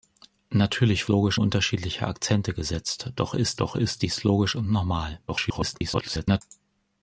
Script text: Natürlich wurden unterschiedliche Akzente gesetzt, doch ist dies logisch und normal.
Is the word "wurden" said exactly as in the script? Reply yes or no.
no